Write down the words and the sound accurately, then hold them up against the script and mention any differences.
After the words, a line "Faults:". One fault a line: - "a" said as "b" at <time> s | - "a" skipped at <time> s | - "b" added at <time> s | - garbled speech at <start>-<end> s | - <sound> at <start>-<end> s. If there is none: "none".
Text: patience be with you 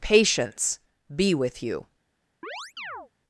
patience be with you
Faults:
- chirp at 2.4-3.1 s